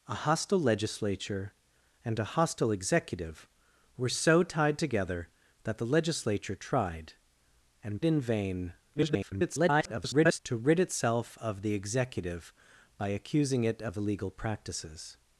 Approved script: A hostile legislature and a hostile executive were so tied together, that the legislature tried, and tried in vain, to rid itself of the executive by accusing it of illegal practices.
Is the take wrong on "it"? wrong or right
right